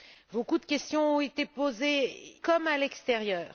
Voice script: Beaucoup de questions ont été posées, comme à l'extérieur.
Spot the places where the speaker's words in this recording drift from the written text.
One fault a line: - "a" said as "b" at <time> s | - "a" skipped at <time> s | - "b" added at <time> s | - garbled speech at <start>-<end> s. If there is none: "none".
none